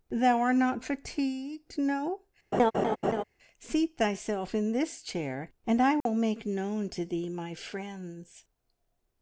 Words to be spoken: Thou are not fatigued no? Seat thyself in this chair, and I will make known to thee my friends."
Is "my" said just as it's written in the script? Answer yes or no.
yes